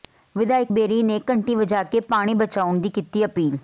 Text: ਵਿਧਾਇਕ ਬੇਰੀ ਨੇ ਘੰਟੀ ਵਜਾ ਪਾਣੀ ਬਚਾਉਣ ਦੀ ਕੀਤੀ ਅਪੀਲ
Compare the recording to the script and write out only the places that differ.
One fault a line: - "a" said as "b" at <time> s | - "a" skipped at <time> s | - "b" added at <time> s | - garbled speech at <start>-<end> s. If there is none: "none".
- "ਕੇ" added at 1.8 s